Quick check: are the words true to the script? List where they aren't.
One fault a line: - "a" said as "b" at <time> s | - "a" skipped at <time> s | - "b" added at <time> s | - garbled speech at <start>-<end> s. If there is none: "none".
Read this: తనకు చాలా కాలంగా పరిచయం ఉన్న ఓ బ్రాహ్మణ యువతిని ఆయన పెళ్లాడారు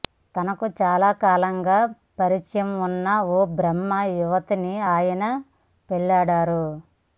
none